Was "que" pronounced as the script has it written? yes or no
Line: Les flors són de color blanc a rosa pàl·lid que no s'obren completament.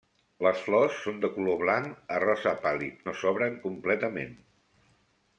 no